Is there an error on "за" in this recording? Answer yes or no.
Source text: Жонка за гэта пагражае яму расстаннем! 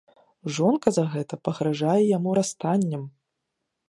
no